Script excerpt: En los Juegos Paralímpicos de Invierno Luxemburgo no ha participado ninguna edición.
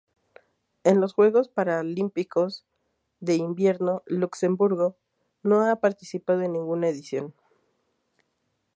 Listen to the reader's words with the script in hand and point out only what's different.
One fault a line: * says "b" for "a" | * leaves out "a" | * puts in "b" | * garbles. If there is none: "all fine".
* puts in "en"